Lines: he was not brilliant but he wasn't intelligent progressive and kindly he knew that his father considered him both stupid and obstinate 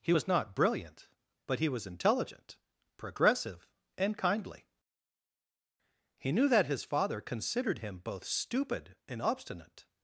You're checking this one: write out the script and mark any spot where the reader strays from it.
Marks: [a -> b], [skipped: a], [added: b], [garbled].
he was not brilliant but he [wasn't -> was] intelligent progressive and kindly he knew that his father considered him both stupid and obstinate